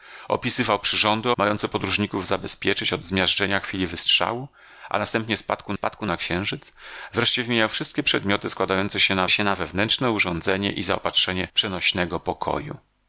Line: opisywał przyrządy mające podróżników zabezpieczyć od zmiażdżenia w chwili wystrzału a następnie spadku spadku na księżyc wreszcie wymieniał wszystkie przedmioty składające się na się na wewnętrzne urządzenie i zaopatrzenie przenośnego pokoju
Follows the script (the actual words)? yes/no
yes